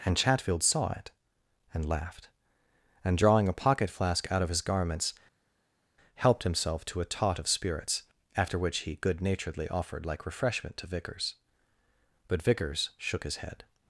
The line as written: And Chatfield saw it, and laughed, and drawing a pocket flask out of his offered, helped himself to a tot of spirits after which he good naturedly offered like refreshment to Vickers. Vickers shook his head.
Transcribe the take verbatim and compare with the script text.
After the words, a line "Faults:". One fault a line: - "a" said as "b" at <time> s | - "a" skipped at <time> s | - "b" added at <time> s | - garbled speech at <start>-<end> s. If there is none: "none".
And Chatfield saw it, and laughed, and drawing a pocket flask out of his garments, helped himself to a tot of spirits after which he good naturedly offered like refreshment to Vickers. But Vickers shook his head.
Faults:
- "offered" said as "garments" at 4.6 s
- "But" added at 12.3 s